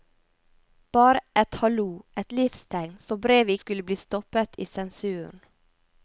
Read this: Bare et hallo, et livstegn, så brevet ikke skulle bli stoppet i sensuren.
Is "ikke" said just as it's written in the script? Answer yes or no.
no